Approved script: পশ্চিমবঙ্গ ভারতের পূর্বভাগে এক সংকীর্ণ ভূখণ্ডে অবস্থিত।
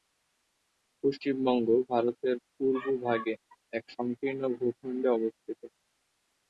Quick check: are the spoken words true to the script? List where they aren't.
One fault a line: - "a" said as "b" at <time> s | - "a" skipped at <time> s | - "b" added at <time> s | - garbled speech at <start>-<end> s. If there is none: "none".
none